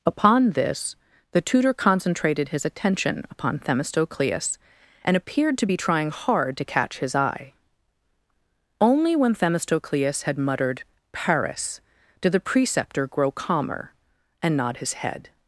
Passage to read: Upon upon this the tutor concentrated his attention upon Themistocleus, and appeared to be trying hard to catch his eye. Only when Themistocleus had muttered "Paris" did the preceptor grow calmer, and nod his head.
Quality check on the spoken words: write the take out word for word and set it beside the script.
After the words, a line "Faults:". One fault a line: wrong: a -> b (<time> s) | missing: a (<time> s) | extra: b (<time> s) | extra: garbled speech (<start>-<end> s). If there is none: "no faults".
Upon this the tutor concentrated his attention upon Themistocleus, and appeared to be trying hard to catch his eye. Only when Themistocleus had muttered "Paris" did the preceptor grow calmer, and nod his head.
Faults:
missing: upon (0.5 s)